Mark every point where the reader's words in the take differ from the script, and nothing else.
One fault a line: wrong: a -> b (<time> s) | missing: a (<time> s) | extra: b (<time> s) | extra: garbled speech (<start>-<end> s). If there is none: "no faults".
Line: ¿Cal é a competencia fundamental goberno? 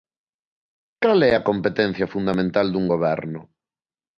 extra: dun (2.7 s)